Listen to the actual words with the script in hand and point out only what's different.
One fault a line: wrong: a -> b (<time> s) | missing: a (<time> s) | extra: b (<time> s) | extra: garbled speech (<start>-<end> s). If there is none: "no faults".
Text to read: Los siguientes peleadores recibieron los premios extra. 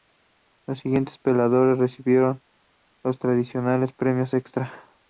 extra: tradicionales (3.2 s)